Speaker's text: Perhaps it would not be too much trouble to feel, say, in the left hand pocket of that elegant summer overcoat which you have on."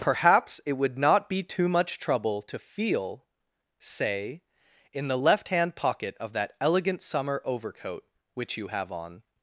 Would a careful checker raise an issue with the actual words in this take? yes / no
no